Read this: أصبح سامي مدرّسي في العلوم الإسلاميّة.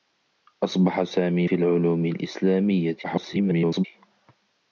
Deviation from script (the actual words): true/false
true